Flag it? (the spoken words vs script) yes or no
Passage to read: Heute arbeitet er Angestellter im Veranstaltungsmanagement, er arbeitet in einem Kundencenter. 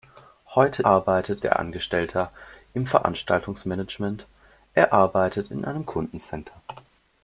no